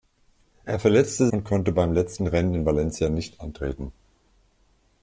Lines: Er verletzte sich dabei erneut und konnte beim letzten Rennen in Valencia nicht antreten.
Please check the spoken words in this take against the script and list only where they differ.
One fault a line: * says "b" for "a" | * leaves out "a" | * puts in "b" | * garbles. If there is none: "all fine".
* leaves out "sich dabei erneut"